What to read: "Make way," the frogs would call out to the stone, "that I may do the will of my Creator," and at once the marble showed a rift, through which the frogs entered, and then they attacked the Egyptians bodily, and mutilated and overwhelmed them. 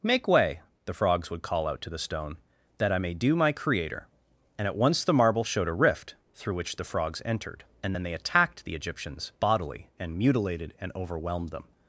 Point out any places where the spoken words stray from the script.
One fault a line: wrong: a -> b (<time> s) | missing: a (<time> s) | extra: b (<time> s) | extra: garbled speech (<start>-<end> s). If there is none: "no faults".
missing: the will of (3.4 s)